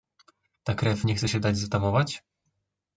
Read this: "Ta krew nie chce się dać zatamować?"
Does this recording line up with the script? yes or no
yes